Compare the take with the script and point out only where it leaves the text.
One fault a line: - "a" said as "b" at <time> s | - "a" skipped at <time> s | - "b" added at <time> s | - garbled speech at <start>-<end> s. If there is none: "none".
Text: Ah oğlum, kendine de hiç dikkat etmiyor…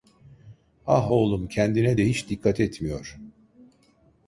none